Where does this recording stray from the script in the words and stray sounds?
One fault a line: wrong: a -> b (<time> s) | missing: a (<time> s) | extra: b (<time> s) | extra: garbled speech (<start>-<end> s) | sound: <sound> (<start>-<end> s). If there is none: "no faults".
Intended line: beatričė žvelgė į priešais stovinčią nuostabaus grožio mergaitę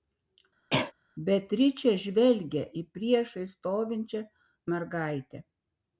sound: cough (0.7-0.9 s)
missing: nuostabaus grožio (4.2 s)